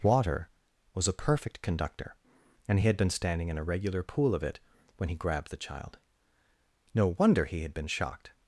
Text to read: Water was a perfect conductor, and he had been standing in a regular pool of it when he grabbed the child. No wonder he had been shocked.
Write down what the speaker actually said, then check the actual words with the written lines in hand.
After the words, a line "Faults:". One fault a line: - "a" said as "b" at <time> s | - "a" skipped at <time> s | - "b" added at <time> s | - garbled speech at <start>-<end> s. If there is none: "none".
Water was a perfect conductor, and he had been standing in a regular pool of it when he grabbed the child. No wonder he had been shocked.
Faults:
none